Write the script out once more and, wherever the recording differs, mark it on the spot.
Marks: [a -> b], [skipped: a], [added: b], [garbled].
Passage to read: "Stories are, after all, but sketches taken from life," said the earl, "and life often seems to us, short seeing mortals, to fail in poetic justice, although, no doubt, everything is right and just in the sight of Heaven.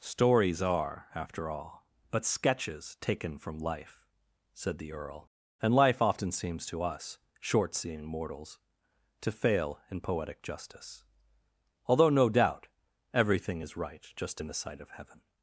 "Stories are, after all, but sketches taken from life," said the earl, "and life often seems to us, short seeing mortals, to fail in poetic justice, although, no doubt, everything is right [skipped: and] just in the sight of Heaven.